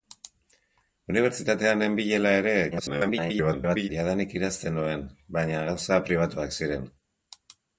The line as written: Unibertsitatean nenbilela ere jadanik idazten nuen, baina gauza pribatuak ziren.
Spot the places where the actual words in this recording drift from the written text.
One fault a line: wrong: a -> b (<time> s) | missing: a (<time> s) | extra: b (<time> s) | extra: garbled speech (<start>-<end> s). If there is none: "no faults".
extra: garbled speech (2.7-3.9 s)